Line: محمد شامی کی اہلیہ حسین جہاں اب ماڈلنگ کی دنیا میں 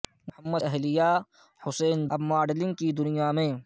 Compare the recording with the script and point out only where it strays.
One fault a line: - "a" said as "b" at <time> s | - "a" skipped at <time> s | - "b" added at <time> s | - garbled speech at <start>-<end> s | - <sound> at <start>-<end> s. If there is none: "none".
- "شامی کی" skipped at 0.6 s
- "جہاں" skipped at 2.0 s